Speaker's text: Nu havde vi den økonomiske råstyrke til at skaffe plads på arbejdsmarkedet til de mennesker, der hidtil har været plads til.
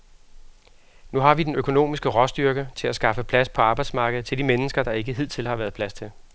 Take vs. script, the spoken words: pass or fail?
fail